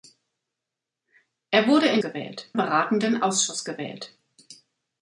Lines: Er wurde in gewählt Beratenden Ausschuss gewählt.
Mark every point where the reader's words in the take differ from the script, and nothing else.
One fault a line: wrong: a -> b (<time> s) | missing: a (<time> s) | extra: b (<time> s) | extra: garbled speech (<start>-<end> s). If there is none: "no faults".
no faults